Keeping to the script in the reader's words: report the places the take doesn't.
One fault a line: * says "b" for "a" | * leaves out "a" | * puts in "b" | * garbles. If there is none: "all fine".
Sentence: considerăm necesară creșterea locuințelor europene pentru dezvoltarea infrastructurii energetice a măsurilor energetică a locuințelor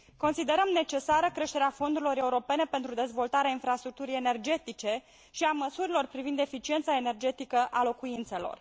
* says "fondurilor" for "locuințelor"
* puts in "și"
* puts in "privind eficiența"